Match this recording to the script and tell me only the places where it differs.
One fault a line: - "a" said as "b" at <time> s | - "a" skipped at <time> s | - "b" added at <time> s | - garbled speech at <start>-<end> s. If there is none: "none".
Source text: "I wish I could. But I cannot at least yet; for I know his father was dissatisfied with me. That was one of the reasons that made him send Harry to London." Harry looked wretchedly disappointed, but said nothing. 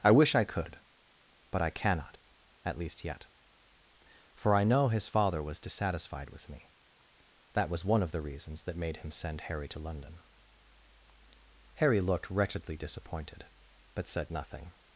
none